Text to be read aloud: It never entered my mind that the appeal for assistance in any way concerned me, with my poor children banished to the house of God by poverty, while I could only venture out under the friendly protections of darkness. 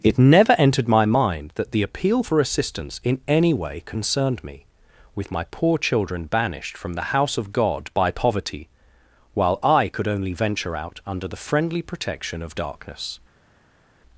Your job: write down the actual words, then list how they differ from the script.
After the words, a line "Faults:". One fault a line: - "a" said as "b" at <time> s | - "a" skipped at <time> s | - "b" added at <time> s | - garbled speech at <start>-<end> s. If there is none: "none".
It never entered my mind that the appeal for assistance in any way concerned me, with my poor children banished from the house of God by poverty, while I could only venture out under the friendly protection of darkness.
Faults:
- "to" said as "from" at 6.8 s
- "protections" said as "protection" at 11.8 s